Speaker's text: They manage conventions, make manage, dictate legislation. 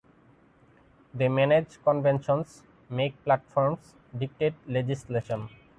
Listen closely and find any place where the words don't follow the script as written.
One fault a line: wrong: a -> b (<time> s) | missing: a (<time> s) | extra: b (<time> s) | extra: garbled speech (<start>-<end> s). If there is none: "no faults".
wrong: manage -> platforms (3.2 s)